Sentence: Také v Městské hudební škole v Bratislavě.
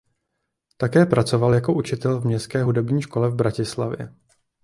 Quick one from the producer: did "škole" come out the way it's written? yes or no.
yes